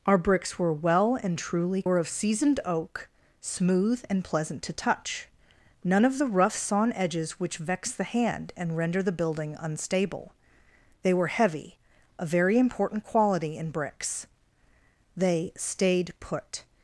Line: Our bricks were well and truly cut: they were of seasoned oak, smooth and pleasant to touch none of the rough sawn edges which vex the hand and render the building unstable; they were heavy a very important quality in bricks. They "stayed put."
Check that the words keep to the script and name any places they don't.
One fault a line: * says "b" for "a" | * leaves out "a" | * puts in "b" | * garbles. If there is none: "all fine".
* leaves out "cut they"